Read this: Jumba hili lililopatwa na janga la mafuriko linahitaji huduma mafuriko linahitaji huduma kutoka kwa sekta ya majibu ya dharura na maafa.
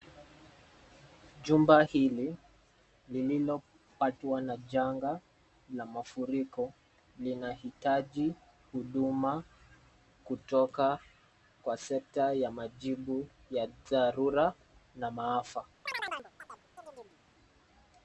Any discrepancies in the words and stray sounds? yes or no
yes